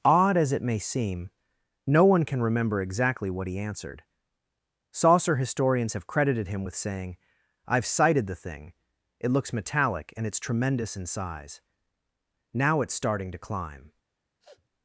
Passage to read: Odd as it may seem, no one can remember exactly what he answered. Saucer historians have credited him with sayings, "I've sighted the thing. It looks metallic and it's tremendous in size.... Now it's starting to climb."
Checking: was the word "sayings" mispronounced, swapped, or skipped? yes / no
yes